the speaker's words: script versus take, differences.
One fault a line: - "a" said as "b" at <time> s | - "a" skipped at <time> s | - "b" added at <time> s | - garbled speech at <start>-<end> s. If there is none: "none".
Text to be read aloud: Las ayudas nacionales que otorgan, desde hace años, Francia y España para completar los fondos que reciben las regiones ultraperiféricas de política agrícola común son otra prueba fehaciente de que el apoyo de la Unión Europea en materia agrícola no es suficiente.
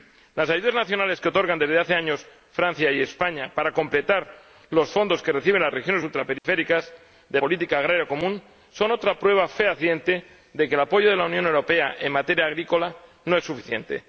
none